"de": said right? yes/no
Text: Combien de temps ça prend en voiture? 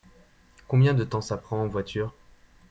yes